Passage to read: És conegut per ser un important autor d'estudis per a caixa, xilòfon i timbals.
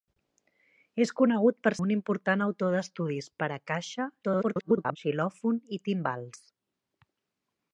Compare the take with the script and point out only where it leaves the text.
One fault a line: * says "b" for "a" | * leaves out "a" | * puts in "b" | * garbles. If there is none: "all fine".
* leaves out "ser"
* garbles